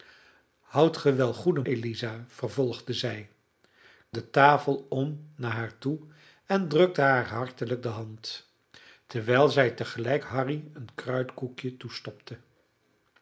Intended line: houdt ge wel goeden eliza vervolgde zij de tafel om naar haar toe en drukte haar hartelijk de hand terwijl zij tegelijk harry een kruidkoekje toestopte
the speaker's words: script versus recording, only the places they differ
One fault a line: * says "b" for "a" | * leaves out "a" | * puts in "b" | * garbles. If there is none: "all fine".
all fine